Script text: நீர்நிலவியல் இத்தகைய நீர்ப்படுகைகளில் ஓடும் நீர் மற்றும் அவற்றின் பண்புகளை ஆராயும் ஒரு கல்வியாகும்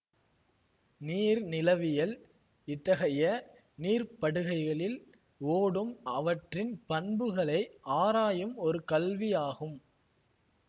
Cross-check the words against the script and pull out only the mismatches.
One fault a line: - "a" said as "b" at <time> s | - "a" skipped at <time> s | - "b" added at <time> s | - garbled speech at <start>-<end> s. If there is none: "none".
- "நீர் மற்றும்" skipped at 5.9 s